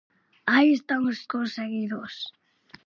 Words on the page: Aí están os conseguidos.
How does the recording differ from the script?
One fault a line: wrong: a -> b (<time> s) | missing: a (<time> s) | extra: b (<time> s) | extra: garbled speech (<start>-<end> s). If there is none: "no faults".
no faults